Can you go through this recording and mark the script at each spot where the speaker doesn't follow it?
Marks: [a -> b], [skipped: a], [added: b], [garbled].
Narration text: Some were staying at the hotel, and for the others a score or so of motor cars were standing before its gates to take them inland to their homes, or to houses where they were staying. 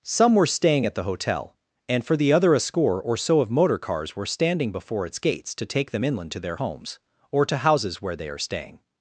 Some were staying at the hotel, and for the [others -> other] a score or so of motor cars were standing before its gates to take them inland to their homes, or to houses where they [were -> are] staying.